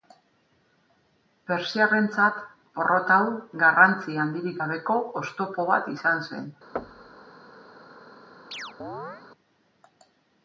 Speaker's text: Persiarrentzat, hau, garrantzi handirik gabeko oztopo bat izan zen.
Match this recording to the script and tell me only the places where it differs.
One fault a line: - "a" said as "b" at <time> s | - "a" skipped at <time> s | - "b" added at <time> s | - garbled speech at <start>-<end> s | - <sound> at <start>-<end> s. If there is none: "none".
- "porrot" added at 2.8 s
- thud at 6.8-7.3 s
- chirp at 8.5-9.2 s